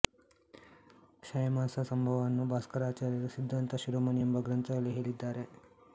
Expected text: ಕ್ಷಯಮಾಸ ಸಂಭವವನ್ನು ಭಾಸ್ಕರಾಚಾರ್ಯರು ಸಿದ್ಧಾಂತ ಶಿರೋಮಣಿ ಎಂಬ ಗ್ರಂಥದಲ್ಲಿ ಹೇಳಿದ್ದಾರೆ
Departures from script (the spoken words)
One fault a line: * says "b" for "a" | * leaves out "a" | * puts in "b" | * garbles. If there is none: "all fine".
all fine